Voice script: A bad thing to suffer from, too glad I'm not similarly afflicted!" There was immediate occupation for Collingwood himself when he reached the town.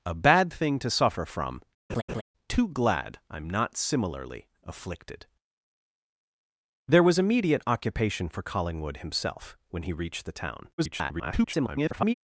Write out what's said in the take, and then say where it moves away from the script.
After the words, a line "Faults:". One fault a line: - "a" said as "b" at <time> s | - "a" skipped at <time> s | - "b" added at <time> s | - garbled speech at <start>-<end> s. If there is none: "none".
A bad thing to suffer from, too glad I'm not similarly afflicted!" There was immediate occupation for Collingwood himself when he reached the town. [garbled]
Faults:
- garbled speech at 10.8-12.1 s